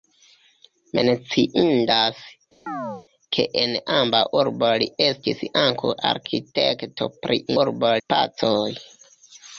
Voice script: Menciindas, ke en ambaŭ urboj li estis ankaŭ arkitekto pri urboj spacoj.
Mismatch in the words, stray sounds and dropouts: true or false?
true